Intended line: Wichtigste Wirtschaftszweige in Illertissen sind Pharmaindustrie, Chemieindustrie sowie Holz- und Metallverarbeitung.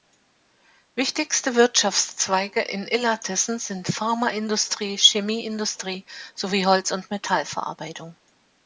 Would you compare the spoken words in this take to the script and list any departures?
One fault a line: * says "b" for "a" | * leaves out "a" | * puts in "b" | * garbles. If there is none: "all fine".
all fine